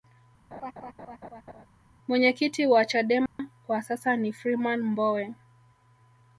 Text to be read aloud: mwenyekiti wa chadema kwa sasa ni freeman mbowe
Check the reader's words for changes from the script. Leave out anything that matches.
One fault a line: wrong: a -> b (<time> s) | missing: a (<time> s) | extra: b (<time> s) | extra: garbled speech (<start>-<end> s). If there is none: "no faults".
no faults